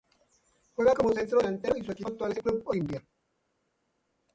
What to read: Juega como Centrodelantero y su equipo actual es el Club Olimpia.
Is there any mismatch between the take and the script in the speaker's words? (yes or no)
no